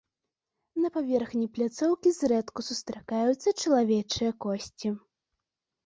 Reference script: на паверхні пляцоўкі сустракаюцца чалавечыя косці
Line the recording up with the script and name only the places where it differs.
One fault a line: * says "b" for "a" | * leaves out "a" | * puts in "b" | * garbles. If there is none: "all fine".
* puts in "зрэдку"